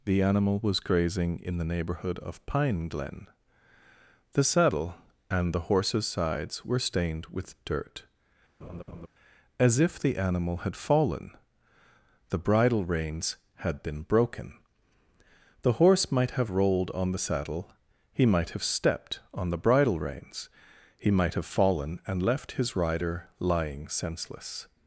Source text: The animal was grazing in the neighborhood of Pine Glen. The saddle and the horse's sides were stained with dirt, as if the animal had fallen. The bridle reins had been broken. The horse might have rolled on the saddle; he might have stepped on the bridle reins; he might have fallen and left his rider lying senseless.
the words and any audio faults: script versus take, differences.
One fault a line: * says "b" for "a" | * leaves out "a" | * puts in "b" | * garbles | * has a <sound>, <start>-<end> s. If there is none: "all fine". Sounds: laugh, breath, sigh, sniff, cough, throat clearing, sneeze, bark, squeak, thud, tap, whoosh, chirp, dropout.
* has a laugh, 8.6-9.1 s